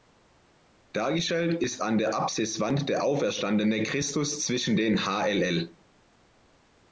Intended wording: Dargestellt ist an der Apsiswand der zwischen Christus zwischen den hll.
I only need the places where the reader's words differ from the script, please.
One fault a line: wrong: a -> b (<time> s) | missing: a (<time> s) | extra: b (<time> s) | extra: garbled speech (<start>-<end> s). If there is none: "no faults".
wrong: zwischen -> auferstandene (3.0 s)